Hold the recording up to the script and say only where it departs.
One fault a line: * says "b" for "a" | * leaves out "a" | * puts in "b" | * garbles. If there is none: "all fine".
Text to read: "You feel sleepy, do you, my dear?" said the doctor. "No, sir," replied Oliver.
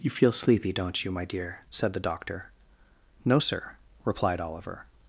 * says "don't" for "do"